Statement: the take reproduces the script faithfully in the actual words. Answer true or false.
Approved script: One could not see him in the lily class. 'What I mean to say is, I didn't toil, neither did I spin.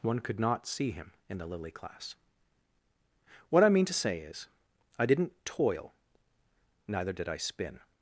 true